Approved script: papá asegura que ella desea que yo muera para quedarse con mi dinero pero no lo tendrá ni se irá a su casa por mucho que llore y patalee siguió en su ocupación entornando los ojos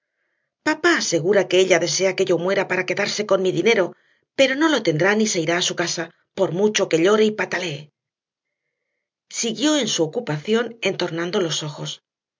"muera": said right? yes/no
yes